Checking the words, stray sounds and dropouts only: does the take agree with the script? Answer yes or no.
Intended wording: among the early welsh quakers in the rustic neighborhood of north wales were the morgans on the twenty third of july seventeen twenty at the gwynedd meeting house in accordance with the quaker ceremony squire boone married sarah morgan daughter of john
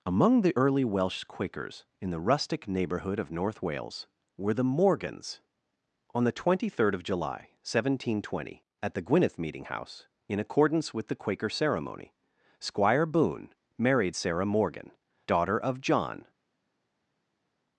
yes